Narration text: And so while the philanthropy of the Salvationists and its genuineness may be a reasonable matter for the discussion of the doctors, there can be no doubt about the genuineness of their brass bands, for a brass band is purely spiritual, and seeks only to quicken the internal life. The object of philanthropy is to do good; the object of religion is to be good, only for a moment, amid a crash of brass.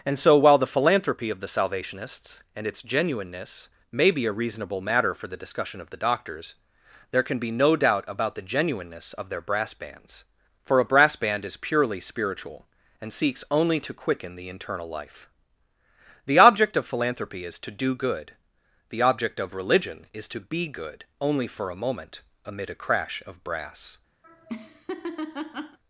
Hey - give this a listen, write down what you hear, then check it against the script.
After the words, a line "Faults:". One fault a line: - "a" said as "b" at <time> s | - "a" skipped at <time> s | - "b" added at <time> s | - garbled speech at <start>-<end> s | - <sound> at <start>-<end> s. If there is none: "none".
And so while the philanthropy of the Salvationists and its genuineness may be a reasonable matter for the discussion of the doctors, there can be no doubt about the genuineness of their brass bands, for a brass band is purely spiritual, and seeks only to quicken the internal life. The object of philanthropy is to do good; the object of religion is to be good, only for a moment, amid a crash of brass.
Faults:
- laugh at 24.2-25.8 s